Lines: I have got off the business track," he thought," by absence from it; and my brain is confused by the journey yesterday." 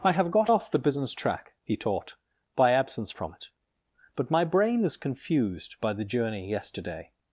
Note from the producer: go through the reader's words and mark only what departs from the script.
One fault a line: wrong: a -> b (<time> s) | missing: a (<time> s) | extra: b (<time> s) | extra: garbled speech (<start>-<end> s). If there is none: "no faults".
wrong: thought -> taught (1.7 s)
wrong: and -> but (4.1 s)